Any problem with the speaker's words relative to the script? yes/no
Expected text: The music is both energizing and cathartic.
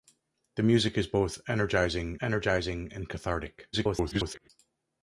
yes